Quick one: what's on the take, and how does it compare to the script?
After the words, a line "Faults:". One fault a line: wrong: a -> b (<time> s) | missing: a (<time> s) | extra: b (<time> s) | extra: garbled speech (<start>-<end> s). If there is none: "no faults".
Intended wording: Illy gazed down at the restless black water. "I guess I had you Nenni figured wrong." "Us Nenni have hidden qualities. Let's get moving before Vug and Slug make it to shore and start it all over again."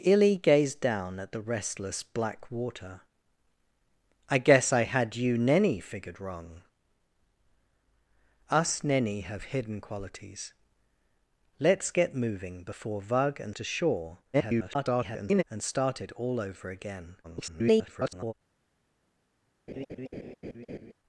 Illy gazed down at the restless black water. "I guess I had you Nenni figured wrong." "Us Nenni have hidden qualities. Let's get moving before Vug and To shore [garbled] and start it all over again." [garbled]
Faults:
missing: Slug make it (13.6 s)
extra: garbled speech (14.3-15.4 s)
extra: garbled speech (17.2-18.3 s)